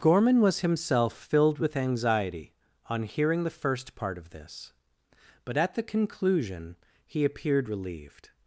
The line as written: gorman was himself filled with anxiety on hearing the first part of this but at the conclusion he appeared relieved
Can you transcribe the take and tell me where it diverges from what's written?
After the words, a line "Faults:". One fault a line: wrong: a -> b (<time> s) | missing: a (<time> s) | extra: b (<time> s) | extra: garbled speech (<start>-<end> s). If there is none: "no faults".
gorman was himself filled with anxiety on hearing the first part of this but at the conclusion he appeared relieved
Faults:
no faults